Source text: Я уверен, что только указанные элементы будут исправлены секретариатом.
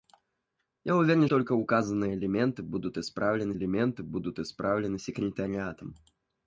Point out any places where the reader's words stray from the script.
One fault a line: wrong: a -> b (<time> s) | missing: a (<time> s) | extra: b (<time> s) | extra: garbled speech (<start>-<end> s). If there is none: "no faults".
missing: что (1.3 s)
extra: элементы будут исправлены (3.5 s)